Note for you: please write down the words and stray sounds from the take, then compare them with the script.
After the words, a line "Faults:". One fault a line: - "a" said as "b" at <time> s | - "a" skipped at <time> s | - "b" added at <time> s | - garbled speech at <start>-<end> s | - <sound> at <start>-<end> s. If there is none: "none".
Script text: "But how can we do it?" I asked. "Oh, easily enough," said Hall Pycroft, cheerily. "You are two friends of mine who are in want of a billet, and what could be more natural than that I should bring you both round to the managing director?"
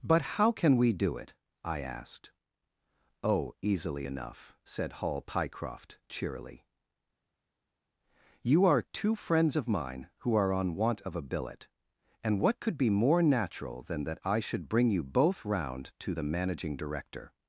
"But how can we do it?" I asked. "Oh, easily enough," said Hall Pycroft, cheerily. "You are two friends of mine who are on want of a billet, and what could be more natural than that I should bring you both round to the managing director?"
Faults:
- "in" said as "on" at 10.5 s